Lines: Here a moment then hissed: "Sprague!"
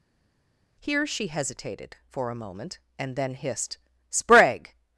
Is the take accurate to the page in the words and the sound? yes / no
no